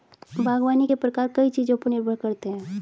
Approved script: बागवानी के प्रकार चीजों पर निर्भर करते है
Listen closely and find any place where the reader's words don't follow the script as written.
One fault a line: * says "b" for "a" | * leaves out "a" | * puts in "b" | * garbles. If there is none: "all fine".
* puts in "कई"